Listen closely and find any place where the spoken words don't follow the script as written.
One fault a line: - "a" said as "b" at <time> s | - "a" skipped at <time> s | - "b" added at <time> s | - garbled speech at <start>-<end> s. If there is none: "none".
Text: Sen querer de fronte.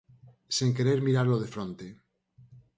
- "miralo" added at 1.1 s